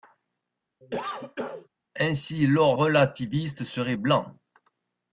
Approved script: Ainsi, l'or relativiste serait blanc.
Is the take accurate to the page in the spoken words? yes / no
yes